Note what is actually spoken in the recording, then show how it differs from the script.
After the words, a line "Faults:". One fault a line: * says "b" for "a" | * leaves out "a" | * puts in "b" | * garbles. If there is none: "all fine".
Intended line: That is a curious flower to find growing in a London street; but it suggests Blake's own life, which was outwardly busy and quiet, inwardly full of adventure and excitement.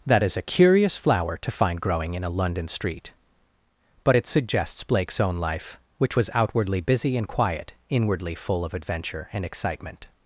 That is a curious flower to find growing in a London street; but it suggests Blake's own life, which was outwardly busy and quiet, inwardly full of adventure and excitement.
Faults:
all fine